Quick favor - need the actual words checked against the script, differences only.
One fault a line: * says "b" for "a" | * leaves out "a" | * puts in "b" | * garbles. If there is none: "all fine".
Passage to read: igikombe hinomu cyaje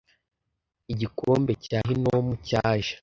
* puts in "cya"